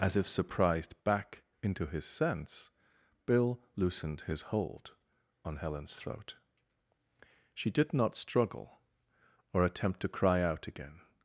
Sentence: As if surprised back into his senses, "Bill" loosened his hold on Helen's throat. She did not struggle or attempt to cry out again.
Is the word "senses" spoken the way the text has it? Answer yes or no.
no